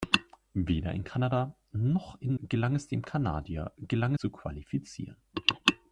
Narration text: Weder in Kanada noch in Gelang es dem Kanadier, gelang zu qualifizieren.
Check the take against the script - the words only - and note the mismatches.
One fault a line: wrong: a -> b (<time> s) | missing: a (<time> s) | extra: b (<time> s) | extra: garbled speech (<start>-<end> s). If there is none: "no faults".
no faults